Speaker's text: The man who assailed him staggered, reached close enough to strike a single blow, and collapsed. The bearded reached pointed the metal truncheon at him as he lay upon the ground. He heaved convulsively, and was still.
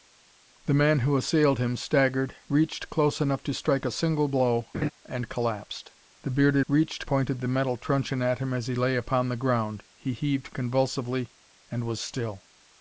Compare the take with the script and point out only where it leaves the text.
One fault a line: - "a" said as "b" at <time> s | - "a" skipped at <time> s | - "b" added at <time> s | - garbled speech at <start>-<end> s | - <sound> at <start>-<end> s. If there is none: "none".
- laugh at 4.7-4.9 s